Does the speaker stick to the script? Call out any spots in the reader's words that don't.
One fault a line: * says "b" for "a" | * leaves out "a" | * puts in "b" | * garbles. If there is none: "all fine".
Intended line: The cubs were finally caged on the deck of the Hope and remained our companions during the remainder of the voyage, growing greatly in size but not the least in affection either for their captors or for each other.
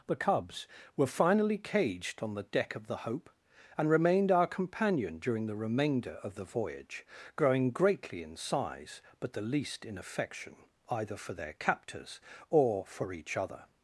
* says "companion" for "companions"
* leaves out "not"